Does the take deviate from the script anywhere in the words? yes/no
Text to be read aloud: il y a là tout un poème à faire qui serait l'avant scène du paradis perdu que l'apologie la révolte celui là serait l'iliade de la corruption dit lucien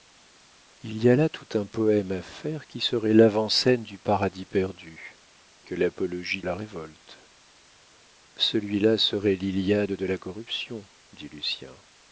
no